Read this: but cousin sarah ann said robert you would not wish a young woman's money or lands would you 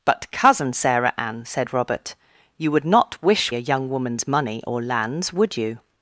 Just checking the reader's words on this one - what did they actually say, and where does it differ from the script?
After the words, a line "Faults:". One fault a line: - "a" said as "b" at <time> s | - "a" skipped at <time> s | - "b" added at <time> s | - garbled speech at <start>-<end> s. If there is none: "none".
but cousin sarah ann said robert you would not wish a young woman's money or lands would you
Faults:
none